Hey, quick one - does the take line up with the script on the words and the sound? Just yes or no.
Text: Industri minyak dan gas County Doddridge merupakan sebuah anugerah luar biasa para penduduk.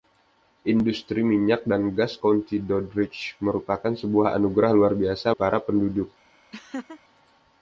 no